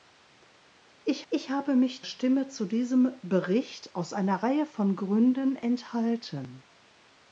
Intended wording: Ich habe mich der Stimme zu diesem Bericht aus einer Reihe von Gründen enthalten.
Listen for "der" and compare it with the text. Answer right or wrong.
wrong